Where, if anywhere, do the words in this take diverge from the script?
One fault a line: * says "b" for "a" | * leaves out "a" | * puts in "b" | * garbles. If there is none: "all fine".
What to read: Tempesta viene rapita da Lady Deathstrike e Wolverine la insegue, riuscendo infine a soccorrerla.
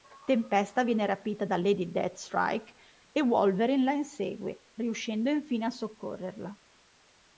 all fine